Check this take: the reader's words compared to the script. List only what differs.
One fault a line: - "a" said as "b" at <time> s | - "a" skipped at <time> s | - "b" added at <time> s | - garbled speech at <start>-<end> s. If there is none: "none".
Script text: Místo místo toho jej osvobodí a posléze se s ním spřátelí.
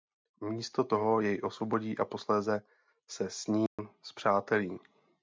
- "místo" skipped at 0.8 s